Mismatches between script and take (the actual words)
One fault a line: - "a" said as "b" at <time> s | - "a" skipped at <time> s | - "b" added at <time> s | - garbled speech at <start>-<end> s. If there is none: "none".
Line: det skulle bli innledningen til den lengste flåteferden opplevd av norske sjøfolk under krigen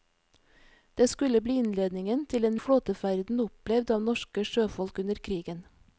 - "lengste" skipped at 2.6 s